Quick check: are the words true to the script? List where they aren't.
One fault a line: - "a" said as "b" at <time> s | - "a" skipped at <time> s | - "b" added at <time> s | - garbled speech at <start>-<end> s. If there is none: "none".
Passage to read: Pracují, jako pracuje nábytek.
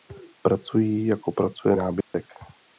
none